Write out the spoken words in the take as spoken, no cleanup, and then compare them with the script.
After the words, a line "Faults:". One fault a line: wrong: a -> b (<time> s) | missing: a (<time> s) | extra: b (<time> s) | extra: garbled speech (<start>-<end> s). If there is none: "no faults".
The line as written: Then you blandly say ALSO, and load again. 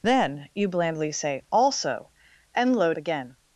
Then you blandly say ALSO, and load again.
Faults:
no faults